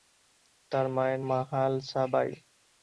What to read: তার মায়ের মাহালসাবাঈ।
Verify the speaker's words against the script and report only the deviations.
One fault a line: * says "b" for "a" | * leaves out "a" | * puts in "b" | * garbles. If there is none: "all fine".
all fine